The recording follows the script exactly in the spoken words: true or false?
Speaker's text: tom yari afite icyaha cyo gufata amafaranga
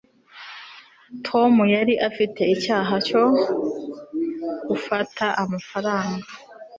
true